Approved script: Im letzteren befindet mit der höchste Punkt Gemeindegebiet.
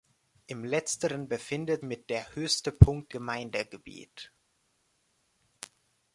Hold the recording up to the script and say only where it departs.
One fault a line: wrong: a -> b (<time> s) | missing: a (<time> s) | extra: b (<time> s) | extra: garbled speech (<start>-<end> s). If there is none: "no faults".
no faults